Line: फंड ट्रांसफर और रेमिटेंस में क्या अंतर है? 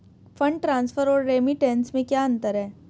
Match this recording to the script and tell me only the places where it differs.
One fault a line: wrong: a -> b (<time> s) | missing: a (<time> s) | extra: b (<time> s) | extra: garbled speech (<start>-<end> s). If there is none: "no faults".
no faults